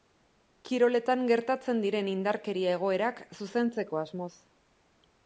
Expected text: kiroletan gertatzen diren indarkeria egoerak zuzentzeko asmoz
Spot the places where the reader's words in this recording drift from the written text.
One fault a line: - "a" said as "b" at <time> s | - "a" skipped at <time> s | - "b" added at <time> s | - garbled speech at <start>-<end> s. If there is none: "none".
none